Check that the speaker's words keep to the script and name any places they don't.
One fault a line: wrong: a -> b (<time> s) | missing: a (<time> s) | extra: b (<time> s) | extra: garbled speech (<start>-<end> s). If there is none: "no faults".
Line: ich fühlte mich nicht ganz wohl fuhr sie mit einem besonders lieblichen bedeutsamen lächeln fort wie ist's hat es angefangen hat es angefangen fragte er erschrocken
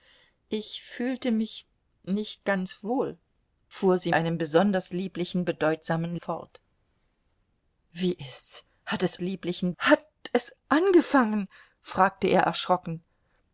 missing: mit (4.1 s)
missing: lächeln (6.2 s)
wrong: angefangen -> lieblichen (9.2 s)